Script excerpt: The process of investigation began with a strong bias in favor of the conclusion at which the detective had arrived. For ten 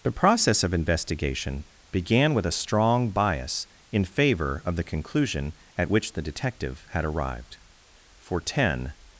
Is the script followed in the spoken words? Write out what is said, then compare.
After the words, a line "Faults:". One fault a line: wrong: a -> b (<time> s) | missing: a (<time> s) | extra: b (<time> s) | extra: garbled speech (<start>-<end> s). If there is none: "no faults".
The process of investigation began with a strong bias in favor of the conclusion at which the detective had arrived. For ten
Faults:
no faults